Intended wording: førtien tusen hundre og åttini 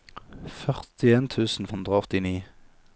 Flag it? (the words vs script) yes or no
no